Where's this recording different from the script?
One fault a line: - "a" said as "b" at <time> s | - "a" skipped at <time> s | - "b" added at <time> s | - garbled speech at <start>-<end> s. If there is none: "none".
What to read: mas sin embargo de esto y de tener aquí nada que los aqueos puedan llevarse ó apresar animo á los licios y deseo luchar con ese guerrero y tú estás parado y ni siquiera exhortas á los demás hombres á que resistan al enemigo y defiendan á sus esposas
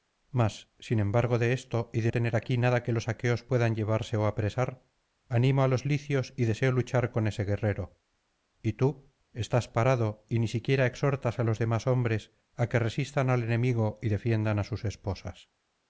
none